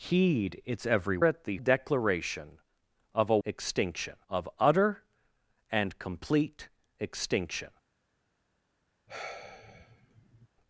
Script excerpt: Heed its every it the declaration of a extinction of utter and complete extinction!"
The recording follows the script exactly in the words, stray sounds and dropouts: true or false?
false